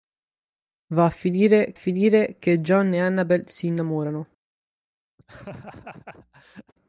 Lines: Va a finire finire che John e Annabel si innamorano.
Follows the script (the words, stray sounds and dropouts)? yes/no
no